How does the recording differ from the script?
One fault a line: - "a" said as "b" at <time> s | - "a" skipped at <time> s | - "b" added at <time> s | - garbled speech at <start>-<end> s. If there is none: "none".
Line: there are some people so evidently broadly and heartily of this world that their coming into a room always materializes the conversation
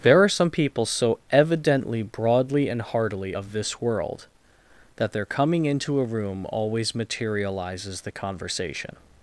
none